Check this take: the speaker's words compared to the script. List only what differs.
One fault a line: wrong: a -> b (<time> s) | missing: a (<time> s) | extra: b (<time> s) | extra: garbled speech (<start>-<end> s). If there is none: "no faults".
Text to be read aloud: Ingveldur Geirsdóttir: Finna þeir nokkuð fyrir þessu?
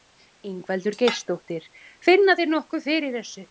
no faults